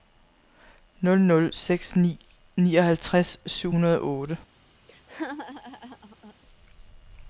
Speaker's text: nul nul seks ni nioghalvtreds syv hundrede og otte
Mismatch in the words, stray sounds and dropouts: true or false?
true